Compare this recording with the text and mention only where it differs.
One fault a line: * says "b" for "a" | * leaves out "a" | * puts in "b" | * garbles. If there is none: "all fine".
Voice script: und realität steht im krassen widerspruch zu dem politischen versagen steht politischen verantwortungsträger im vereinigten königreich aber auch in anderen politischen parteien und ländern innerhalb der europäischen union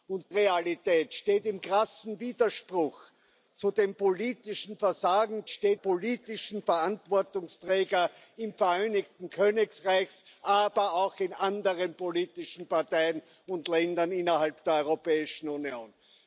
all fine